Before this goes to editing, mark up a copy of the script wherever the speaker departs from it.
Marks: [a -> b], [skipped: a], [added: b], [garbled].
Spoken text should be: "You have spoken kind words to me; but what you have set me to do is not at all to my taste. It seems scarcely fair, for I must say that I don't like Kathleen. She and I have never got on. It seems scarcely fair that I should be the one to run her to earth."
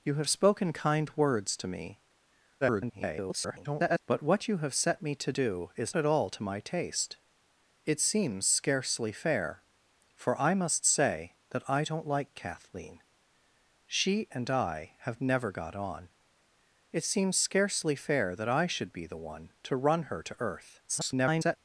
"You have spoken kind words to me; [garbled] but what you have set me to do is [skipped: not] at all to my taste. It seems scarcely fair, for I must say that I don't like Kathleen. She and I have never got on. It seems scarcely fair that I should be the one to run her to earth." [garbled]